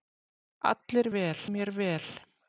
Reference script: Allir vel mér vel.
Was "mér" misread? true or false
false